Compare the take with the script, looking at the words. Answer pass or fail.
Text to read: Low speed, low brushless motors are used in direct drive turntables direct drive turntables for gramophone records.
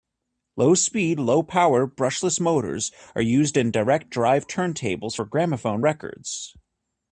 fail